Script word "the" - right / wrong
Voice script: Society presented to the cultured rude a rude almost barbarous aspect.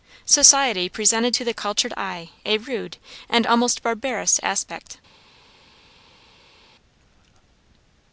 right